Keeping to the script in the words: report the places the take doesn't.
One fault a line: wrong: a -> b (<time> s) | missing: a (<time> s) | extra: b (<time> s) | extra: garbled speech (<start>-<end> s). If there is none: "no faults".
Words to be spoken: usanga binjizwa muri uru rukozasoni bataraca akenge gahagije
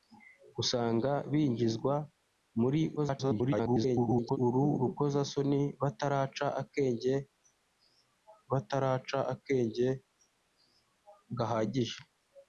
extra: garbled speech (3.0-4.4 s)
extra: bataraca akenge (8.5 s)